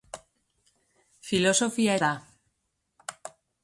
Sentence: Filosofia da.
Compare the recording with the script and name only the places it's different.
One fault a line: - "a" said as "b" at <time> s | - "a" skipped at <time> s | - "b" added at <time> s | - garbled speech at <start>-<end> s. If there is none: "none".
none